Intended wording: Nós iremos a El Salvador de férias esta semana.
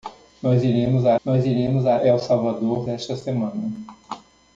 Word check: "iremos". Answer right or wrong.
right